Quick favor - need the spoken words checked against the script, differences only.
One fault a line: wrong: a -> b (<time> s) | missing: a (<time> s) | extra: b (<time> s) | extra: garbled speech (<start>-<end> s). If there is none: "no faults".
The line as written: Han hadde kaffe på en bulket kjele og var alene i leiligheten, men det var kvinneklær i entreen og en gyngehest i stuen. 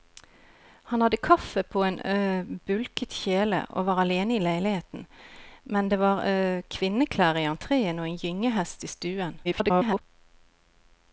extra: garbled speech (9.4-10.0 s)